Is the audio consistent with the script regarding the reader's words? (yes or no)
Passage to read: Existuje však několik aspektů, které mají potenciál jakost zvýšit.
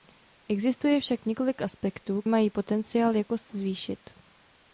no